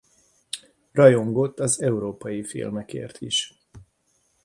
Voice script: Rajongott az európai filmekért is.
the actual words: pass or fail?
pass